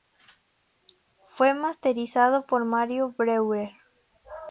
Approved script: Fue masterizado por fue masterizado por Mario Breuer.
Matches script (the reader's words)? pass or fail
fail